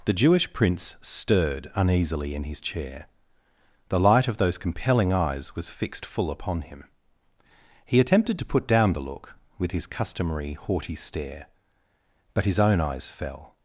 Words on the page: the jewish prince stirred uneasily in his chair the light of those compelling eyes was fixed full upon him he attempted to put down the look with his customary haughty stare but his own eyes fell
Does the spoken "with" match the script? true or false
true